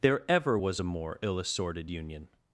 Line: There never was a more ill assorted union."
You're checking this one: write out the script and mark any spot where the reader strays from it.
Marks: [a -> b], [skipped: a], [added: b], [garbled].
There [never -> ever] was a more ill assorted union."